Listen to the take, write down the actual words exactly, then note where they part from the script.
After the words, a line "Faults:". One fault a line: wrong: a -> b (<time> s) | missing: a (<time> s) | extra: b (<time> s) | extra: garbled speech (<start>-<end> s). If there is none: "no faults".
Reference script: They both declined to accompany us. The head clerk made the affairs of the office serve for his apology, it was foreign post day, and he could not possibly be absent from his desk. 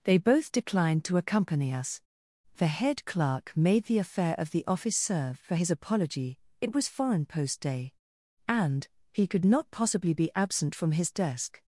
They both declined to accompany us. The head clerk made the affair of the office serve for his apology, it was foreign post day, and he could not possibly be absent from his desk.
Faults:
wrong: affairs -> affair (4.0 s)